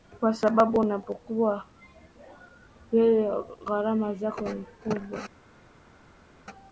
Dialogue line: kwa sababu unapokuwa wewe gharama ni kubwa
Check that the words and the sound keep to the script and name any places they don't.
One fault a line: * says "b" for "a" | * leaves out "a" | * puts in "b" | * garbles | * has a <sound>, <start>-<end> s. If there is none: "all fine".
* puts in "zako"